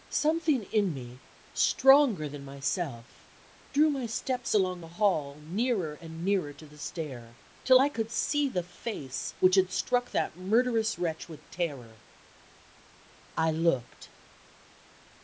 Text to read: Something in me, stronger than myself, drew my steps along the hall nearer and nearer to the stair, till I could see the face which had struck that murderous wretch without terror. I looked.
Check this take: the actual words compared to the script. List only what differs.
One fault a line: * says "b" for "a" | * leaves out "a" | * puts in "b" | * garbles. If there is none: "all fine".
* says "with" for "without"